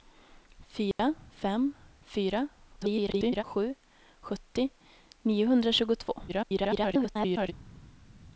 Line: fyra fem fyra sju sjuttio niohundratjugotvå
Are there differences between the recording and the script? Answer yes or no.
yes